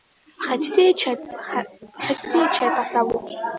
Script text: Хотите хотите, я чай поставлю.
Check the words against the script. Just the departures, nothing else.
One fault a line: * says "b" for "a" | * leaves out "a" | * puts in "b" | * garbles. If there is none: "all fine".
* leaves out "хотите"